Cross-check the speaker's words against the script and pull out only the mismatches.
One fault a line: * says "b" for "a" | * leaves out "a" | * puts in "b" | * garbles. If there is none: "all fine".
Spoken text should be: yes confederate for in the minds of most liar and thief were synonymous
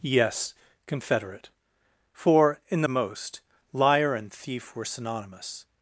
* leaves out "minds of"